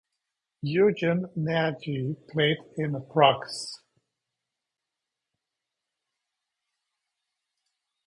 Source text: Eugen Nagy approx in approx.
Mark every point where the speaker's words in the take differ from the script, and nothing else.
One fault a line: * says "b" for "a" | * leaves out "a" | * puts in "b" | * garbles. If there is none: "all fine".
* says "played" for "approx"